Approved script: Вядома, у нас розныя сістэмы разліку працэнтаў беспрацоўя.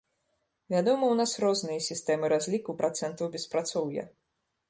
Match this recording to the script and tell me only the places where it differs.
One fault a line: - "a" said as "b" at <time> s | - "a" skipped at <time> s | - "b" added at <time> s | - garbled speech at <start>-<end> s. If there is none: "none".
none